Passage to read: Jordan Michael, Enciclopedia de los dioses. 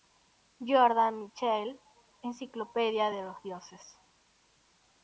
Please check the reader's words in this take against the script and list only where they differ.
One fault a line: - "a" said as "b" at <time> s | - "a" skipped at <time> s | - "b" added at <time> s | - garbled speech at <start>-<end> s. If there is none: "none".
none